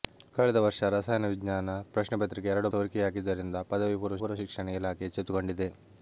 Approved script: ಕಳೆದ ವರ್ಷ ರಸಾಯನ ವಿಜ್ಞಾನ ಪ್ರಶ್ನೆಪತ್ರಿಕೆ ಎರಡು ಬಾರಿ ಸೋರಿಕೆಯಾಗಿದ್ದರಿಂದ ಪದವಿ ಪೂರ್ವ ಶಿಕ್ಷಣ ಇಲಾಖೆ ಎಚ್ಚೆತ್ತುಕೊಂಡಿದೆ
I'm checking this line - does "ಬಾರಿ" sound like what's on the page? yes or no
no